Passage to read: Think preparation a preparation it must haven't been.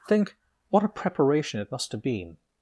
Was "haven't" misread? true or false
true